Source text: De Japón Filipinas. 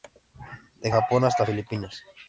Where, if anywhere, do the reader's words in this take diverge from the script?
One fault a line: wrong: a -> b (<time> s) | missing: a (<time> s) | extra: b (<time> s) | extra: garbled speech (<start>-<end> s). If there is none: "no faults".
extra: hasta (1.2 s)